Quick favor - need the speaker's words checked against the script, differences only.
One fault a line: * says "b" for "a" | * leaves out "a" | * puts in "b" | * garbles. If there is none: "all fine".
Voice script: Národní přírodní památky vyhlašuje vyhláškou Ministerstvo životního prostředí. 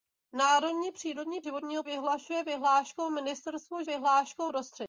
* says "životního" for "památky"
* says "vyhláškou" for "životního"